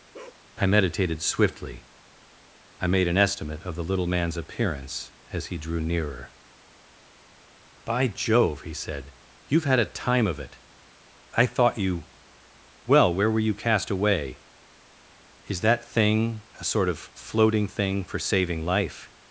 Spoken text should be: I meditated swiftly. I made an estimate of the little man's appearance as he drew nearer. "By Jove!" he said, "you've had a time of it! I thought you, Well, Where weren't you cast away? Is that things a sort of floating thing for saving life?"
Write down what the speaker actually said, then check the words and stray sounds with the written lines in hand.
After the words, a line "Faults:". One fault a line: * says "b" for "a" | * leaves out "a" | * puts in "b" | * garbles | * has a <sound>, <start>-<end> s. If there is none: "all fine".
I meditated swiftly. I made an estimate of the little man's appearance as he drew nearer. "By Jove!" he said, "you've had a time of it! I thought you, Well, Where were you cast away? Is that thing a sort of floating thing for saving life?"
Faults:
* has a bark, 0.1-0.4 s
* says "were" for "weren't"
* says "thing" for "things"